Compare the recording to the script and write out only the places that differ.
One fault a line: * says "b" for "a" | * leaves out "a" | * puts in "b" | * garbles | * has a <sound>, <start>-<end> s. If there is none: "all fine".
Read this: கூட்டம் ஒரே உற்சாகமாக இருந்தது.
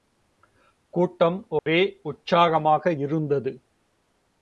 * has a dropout, 1.6-1.7 s